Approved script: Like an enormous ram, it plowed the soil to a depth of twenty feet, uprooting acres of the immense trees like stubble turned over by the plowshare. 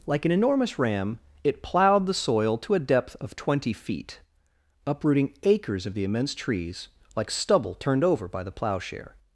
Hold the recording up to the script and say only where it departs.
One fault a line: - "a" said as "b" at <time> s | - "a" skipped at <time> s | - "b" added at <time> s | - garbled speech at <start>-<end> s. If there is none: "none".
none